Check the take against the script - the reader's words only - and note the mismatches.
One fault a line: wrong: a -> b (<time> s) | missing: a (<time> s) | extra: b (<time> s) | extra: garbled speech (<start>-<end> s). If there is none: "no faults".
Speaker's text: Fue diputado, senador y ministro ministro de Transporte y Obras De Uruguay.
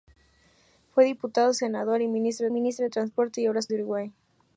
no faults